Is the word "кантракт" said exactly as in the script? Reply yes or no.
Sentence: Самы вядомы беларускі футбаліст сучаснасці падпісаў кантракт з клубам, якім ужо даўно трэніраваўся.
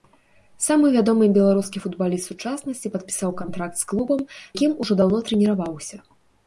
yes